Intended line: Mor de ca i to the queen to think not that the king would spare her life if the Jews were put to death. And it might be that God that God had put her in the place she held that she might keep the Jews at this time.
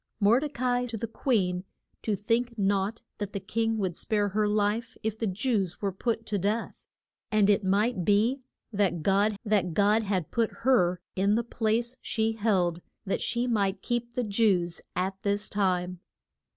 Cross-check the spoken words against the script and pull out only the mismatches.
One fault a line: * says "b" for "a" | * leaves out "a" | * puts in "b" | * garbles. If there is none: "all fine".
all fine